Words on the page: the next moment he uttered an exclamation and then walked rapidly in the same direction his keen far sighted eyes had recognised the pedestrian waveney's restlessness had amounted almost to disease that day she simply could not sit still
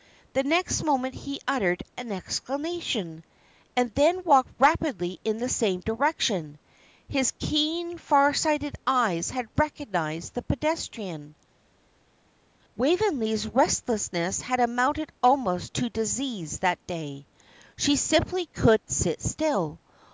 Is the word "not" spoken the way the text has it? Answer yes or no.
no